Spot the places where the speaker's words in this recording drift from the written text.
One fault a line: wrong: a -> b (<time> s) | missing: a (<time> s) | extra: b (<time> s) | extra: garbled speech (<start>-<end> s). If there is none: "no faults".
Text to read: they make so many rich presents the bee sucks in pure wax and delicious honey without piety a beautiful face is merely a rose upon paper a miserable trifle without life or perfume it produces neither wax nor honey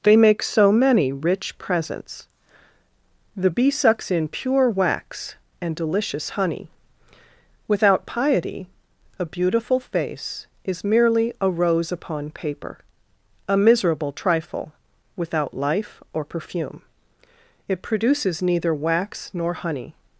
no faults